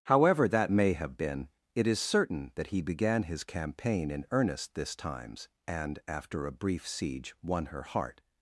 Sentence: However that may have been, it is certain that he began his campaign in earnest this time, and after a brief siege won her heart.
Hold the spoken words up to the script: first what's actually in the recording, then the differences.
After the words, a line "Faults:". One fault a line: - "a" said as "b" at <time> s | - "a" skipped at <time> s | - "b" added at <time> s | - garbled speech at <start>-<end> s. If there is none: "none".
However that may have been, it is certain that he began his campaign in earnest this times, and after a brief siege won her heart.
Faults:
- "time" said as "times" at 5.0 s